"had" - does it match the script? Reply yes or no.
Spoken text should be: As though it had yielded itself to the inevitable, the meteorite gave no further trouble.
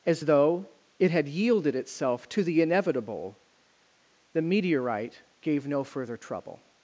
yes